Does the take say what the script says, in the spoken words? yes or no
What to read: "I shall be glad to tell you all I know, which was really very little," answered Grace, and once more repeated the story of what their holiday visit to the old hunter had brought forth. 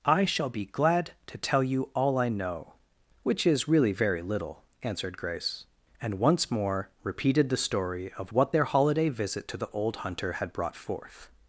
no